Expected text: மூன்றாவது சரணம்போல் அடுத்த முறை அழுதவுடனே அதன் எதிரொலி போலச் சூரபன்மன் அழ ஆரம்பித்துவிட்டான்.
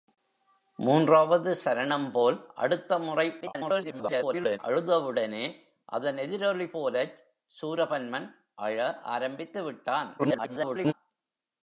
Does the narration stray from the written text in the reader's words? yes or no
yes